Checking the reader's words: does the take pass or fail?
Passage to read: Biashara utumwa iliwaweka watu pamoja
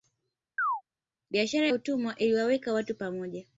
pass